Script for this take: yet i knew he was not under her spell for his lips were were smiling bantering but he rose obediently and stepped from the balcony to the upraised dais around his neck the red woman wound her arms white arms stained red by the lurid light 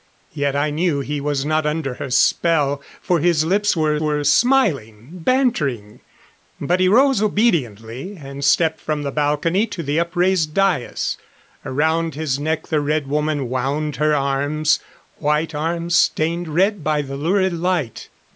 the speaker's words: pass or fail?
pass